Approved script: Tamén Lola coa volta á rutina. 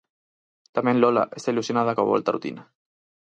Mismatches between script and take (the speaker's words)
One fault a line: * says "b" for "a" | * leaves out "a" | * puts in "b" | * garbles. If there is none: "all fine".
* puts in "está ilusionada"